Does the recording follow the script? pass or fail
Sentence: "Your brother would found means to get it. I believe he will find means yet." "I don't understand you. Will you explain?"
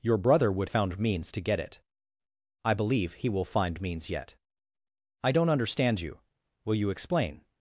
pass